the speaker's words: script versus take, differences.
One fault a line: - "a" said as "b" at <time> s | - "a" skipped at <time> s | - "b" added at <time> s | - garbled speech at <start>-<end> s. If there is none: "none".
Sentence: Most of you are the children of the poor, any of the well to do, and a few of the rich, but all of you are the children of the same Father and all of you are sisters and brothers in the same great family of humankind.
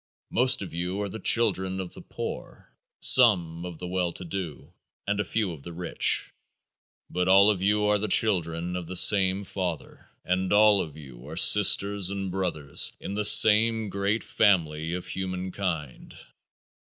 - "any" said as "some" at 3.0 s